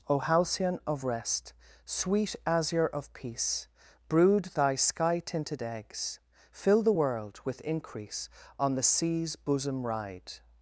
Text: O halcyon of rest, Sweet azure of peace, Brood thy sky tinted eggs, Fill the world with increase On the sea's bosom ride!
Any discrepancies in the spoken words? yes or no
no